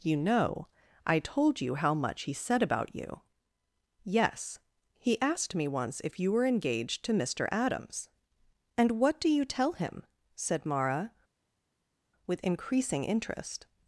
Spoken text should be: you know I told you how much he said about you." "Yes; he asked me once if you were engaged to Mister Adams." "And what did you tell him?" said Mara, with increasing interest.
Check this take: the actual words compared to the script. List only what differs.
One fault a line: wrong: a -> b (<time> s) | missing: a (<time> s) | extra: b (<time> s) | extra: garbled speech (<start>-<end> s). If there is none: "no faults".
wrong: did -> do (9.2 s)